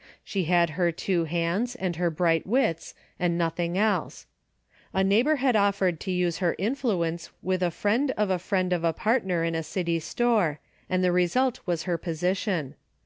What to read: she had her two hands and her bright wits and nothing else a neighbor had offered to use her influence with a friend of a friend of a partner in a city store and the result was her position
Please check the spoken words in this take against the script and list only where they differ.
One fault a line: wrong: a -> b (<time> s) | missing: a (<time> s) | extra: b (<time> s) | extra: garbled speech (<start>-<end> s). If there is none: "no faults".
no faults